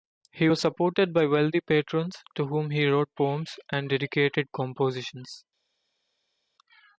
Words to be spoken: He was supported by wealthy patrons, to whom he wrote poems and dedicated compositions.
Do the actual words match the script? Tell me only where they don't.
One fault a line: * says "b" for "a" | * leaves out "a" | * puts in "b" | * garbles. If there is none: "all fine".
all fine